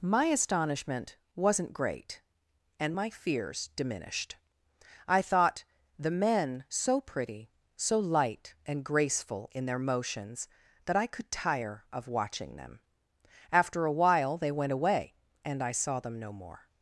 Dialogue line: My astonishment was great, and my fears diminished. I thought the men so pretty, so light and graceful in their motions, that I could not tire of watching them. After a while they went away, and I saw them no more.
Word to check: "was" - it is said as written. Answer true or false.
false